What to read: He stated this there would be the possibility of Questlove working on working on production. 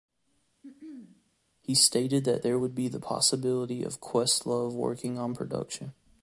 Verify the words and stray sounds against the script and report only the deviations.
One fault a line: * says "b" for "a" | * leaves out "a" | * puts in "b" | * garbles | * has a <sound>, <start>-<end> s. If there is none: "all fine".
* has a throat clearing, 0.6-1.3 s
* says "that" for "this"
* leaves out "working on"